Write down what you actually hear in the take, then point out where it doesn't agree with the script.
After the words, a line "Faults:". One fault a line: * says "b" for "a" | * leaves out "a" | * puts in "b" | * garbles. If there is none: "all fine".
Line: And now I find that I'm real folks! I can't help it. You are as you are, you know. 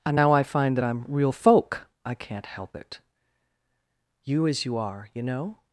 And now I find that I'm real folk! I can't help it. You as you are, you know.
Faults:
* says "folk" for "folks"
* leaves out "are"